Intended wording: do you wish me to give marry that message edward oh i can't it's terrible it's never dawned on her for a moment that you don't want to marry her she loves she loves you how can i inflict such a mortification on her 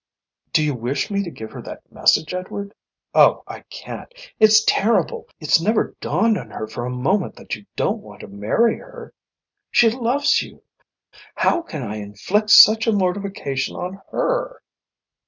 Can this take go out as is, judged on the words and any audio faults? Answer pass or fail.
fail